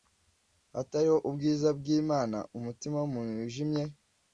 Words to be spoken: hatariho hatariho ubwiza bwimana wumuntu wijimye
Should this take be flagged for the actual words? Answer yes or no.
yes